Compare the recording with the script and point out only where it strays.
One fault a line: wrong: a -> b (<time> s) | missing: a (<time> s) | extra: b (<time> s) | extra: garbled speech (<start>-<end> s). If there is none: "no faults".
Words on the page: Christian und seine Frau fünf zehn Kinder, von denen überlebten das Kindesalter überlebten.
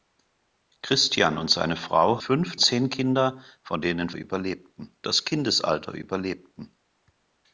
no faults